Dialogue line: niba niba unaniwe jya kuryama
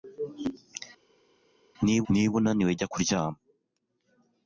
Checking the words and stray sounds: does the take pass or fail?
pass